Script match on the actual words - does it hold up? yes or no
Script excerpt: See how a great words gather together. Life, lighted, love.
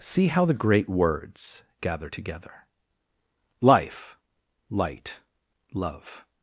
no